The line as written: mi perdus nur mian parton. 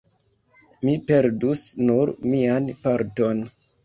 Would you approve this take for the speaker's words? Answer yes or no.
yes